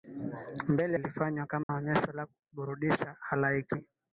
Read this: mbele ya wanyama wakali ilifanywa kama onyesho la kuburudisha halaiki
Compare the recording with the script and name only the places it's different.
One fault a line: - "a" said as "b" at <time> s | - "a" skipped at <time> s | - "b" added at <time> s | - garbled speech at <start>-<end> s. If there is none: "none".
- "ya wanyama wakali" skipped at 1.0 s